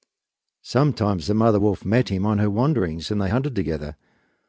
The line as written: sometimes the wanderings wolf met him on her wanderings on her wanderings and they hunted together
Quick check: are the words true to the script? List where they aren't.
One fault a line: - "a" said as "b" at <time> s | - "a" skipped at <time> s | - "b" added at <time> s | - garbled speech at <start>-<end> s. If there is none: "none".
- "wanderings" said as "mother" at 1.4 s
- "on her wanderings" skipped at 3.1 s